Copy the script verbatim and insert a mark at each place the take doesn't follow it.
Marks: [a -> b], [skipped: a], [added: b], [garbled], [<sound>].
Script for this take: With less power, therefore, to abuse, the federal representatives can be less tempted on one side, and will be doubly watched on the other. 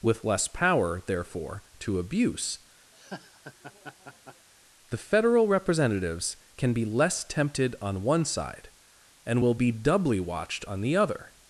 With less power, therefore, to abuse, [laugh] the federal representatives can be less tempted on one side, and will be doubly watched on the other.